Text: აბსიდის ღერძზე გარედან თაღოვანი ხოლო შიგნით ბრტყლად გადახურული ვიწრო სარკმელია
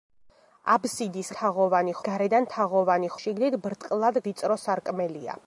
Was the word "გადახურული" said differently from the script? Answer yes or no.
yes